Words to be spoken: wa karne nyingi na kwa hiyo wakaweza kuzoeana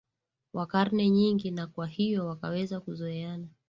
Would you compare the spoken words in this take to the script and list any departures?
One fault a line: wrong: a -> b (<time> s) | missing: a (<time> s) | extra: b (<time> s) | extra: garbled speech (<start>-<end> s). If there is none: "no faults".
no faults